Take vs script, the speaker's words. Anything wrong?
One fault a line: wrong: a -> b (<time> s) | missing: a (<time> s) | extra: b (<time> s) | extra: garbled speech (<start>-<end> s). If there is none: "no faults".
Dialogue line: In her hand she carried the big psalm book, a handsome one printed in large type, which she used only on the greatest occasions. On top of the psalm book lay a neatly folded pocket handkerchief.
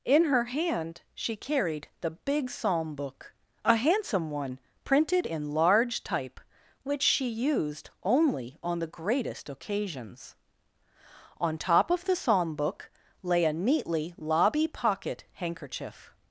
wrong: folded -> lobby (14.2 s)